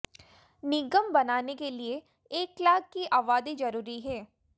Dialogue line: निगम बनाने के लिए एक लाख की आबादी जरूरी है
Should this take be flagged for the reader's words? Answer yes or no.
no